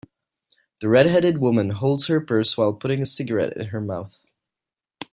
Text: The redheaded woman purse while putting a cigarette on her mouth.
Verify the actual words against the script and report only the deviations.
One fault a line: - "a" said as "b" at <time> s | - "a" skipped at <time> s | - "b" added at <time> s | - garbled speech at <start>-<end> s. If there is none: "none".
- "holds her" added at 1.7 s
- "on" said as "in" at 3.6 s